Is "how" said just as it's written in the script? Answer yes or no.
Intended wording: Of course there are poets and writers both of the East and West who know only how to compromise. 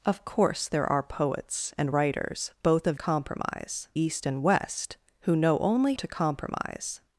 no